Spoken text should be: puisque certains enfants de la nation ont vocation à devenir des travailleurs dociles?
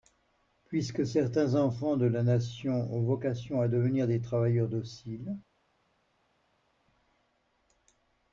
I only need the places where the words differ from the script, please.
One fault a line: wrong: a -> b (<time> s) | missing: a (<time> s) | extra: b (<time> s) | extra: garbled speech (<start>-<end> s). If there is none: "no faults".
no faults